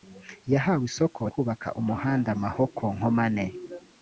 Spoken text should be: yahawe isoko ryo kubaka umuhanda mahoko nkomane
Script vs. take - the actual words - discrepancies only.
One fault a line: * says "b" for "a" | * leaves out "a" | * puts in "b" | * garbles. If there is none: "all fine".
* leaves out "ryo"